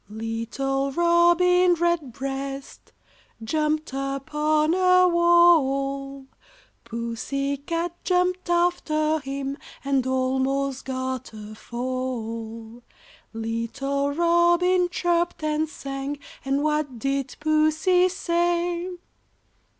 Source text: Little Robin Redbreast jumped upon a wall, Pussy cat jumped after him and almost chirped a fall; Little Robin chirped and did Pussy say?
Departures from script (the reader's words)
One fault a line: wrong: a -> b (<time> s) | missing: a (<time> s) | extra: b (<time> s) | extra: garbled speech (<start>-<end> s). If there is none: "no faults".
wrong: chirped -> got (10.8 s)
extra: sang and what (15.7 s)